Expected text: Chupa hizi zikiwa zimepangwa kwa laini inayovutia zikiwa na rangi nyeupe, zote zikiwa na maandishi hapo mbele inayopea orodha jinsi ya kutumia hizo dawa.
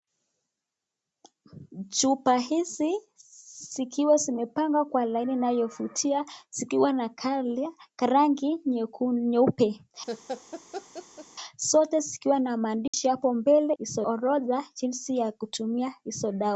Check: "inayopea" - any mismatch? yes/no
yes